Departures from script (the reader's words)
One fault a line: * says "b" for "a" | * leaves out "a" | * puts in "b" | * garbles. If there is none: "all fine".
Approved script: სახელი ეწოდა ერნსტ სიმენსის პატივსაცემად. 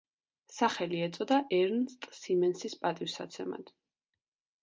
all fine